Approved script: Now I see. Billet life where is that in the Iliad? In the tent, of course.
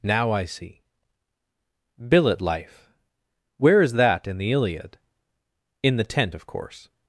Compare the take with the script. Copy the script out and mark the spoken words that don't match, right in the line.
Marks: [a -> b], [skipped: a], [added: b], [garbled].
Now I see. Billet life where is that in the Iliad? In the tent, of course.